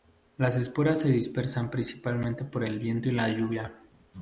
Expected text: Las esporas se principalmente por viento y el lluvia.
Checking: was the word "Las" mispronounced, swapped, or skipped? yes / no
no